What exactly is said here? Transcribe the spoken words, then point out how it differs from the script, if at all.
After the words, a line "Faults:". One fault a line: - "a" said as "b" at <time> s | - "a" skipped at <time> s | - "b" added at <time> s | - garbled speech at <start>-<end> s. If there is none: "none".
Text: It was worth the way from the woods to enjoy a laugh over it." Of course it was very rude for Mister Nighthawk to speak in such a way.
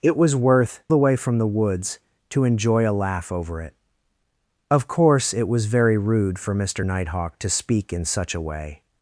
It was worth the way from the woods to enjoy a laugh over it." Of course it was very rude for Mister Nighthawk to speak in such a way.
Faults:
none